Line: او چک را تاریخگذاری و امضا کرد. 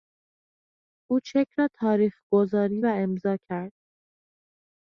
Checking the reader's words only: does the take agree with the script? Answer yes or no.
yes